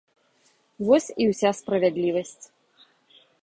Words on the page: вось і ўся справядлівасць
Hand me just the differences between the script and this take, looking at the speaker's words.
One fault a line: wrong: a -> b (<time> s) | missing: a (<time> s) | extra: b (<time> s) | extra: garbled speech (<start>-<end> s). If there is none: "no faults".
no faults